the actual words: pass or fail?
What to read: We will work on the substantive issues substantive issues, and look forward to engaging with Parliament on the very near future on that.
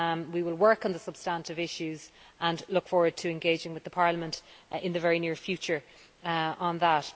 fail